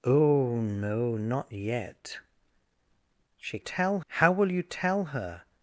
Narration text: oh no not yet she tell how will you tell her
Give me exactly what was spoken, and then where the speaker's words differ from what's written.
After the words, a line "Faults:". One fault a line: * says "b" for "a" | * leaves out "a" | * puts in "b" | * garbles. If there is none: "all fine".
oh no not yet she tell how will you tell her
Faults:
all fine